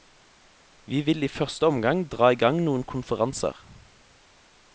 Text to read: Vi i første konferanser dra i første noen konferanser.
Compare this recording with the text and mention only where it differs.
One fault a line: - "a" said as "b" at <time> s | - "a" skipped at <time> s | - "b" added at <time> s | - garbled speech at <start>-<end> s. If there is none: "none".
- "vil" added at 1.0 s
- "konferanser" said as "omgang" at 1.7 s
- "første" said as "gang" at 2.4 s